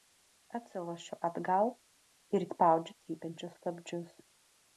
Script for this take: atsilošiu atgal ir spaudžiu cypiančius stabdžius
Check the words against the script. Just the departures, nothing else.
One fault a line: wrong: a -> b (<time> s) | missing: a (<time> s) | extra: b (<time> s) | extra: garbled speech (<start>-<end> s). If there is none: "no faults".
no faults